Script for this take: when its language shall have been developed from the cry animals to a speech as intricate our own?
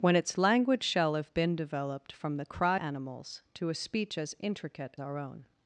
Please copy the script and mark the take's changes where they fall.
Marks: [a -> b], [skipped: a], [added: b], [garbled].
when its language shall have been developed from the cry animals to a speech as intricate our own?